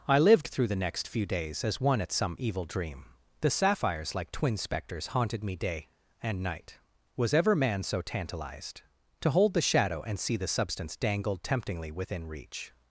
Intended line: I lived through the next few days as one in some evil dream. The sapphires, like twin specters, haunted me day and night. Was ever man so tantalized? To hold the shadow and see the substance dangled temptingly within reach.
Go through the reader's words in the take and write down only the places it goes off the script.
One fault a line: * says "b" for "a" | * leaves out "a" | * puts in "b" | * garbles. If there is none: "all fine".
* says "at" for "in"